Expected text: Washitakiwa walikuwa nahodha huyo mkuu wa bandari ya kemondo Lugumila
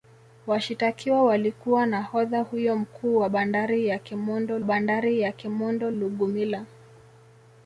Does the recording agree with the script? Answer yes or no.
no